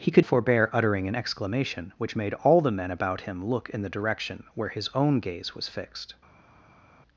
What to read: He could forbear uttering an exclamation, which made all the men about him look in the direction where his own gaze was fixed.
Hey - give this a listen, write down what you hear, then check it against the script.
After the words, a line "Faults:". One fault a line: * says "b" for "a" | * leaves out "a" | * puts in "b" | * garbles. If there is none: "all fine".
He could forbear uttering an exclamation, which made all the men about him look in the direction where his own gaze was fixed.
Faults:
all fine